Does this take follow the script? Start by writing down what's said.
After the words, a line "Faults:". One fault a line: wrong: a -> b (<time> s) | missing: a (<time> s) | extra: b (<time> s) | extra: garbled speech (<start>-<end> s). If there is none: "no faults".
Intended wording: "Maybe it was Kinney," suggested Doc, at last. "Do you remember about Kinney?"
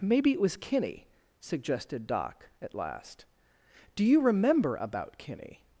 "Maybe it was Kinney," suggested Doc, at last. "Do you remember about Kinney?"
Faults:
no faults